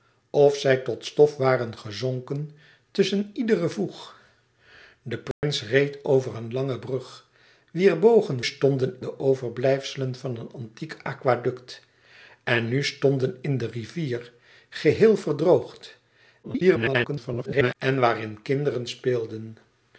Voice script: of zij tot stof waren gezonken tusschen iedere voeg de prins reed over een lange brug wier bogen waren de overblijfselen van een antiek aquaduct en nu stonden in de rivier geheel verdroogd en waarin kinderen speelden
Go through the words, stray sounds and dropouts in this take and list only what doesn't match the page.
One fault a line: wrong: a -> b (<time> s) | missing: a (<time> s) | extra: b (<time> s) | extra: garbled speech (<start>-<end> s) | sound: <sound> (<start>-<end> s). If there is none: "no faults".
sound: dropout (5.3-5.4 s)
wrong: waren -> stonden (8.4 s)
extra: garbled speech (16.4-17.8 s)